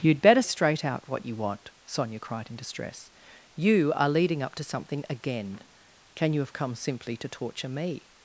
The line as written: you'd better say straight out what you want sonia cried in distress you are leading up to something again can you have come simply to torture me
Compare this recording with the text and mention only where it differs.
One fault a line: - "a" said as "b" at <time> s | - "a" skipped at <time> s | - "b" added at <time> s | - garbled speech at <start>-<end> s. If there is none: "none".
- "say" skipped at 0.4 s